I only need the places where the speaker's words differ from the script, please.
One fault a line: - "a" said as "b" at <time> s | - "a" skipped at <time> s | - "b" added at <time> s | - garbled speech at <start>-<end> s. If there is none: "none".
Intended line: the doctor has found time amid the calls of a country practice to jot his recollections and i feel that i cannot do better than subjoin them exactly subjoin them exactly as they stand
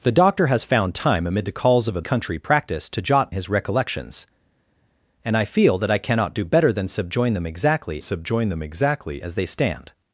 none